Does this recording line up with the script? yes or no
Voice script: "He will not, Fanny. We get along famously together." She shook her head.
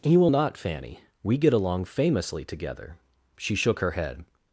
yes